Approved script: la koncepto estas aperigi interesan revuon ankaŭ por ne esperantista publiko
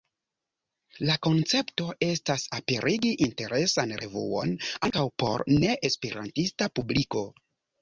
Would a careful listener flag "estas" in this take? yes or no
no